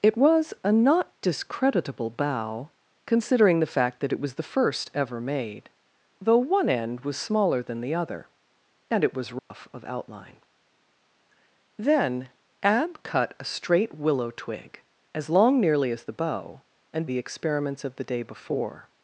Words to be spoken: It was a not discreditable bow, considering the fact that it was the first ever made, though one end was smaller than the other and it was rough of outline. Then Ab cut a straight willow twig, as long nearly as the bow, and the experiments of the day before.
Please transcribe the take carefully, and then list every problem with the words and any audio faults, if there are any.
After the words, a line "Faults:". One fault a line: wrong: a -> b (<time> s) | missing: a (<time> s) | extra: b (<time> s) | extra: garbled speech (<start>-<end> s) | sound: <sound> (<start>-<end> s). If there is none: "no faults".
It was a not discreditable bow, considering the fact that it was the first ever made, though one end was smaller than the other and it was rough of outline. Then Ab cut a straight willow twig, as long nearly as the bow, and the experiments of the day before.
Faults:
sound: dropout (9.4-9.5 s)